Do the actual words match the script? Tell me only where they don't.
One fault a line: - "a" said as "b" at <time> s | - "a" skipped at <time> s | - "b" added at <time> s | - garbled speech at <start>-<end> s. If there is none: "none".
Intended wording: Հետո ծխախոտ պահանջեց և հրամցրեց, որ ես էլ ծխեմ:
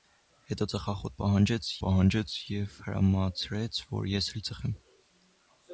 - "պահանջեց" added at 1.8 s